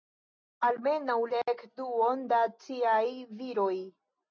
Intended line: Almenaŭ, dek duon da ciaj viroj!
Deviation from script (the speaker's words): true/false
false